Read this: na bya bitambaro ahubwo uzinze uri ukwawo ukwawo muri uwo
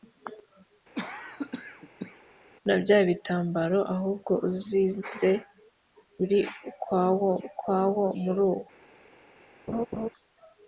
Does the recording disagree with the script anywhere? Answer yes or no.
no